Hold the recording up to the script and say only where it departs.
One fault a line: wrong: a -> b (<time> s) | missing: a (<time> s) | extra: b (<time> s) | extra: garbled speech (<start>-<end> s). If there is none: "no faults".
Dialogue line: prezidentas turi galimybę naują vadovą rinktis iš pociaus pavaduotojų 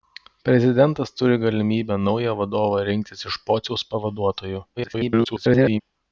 extra: garbled speech (4.8-5.8 s)